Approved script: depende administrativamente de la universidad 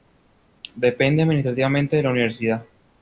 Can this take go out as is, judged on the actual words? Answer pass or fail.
pass